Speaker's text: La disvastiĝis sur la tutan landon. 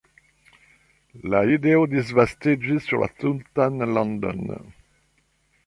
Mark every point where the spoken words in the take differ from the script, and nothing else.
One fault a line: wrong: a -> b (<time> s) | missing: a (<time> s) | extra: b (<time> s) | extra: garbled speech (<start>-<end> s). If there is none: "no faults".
extra: ideo (1.6 s)